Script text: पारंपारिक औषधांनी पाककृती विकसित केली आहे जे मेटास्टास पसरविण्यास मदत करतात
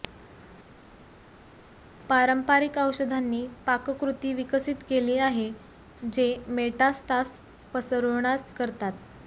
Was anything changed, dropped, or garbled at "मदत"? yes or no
yes